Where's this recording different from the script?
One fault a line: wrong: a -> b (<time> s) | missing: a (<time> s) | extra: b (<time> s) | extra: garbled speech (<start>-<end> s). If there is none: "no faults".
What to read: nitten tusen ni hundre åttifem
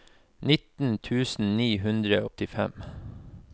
no faults